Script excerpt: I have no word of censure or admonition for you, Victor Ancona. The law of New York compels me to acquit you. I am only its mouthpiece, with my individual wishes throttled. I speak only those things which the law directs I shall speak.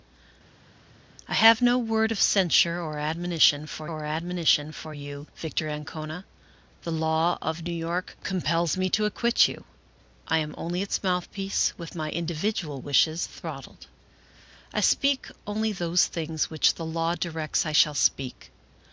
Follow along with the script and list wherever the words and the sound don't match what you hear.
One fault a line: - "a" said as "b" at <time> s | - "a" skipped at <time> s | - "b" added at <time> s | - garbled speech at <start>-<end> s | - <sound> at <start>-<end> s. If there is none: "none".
- "or admonition for" added at 3.9 s